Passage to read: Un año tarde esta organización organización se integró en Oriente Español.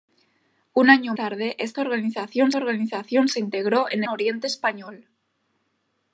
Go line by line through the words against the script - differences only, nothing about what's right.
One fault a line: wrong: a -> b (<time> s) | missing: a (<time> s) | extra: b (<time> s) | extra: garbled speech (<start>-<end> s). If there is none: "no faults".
no faults